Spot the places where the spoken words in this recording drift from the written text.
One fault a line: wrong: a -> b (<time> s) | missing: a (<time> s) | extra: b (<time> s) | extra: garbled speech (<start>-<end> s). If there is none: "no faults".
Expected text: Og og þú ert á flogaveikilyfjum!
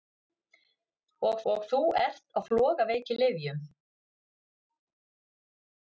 no faults